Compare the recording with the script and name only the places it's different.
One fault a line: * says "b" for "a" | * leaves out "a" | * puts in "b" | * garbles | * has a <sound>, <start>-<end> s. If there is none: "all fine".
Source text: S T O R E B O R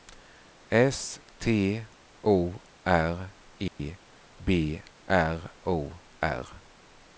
* has a dropout, 3.7-3.8 s
* puts in "R"